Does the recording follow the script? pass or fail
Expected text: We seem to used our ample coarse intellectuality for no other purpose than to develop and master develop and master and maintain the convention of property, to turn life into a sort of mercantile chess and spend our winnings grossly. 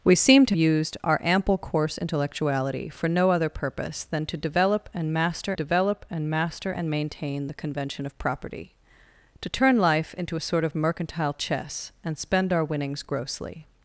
pass